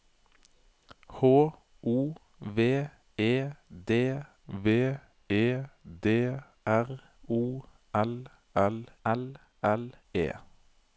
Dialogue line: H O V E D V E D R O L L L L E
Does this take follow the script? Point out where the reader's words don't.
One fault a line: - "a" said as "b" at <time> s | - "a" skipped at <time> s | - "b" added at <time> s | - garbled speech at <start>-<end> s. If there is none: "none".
none